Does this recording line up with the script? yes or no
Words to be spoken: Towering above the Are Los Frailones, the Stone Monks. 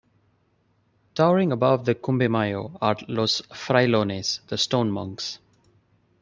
no